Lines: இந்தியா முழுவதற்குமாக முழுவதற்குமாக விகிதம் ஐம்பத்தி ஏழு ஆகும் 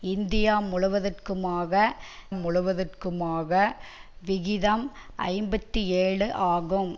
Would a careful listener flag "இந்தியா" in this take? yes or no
no